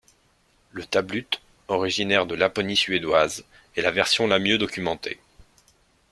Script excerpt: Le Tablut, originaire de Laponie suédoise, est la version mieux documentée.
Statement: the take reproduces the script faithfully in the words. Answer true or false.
false